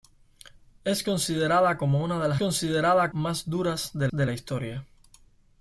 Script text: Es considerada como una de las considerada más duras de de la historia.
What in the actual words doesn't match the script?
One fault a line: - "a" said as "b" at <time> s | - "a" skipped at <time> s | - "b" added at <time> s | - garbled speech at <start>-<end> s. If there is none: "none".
none